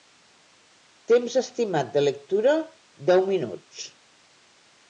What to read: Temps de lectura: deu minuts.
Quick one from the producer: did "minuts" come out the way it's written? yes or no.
yes